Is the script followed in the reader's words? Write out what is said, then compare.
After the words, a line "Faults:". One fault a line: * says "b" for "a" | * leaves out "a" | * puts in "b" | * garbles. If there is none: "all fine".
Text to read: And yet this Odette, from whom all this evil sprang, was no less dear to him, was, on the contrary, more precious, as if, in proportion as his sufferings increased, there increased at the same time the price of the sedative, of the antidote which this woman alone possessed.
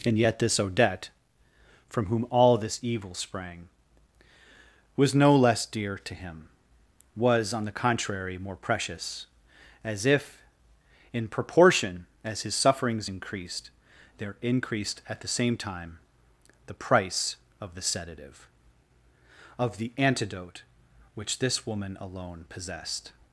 And yet this Odette, from whom all this evil sprang, was no less dear to him, was, on the contrary, more precious, as if, in proportion as his sufferings increased, there increased at the same time the price of the sedative, of the antidote which this woman alone possessed.
Faults:
all fine